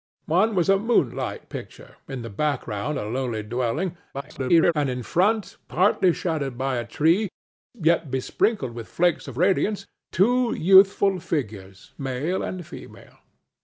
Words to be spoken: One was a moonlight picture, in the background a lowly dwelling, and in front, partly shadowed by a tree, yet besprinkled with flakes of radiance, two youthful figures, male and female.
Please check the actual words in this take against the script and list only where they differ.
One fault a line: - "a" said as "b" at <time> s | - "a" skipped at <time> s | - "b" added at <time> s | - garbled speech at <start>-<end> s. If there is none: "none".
- garbled speech at 4.1-4.7 s